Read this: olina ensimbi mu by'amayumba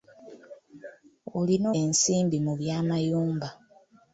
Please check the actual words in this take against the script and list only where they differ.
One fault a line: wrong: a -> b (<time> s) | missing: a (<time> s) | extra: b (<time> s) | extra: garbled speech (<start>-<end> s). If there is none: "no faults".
no faults